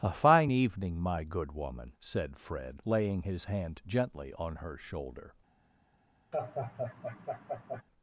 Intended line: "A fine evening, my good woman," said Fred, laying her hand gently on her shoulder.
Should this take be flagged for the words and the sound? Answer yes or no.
yes